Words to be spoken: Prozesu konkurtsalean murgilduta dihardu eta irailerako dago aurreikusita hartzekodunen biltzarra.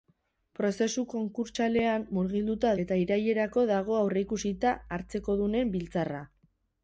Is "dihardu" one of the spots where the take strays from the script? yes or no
yes